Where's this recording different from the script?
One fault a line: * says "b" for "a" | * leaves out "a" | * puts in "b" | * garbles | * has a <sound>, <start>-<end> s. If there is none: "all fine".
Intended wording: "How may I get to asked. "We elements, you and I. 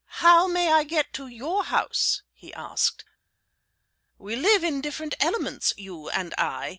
* puts in "your house he"
* puts in "live in different"